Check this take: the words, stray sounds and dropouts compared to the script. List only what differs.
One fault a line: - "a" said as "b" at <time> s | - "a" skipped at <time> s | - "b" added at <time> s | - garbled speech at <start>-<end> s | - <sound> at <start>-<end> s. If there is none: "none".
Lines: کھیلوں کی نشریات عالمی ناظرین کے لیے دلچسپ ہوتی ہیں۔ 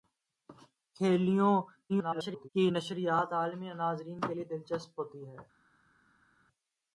- garbled speech at 1.9-2.5 s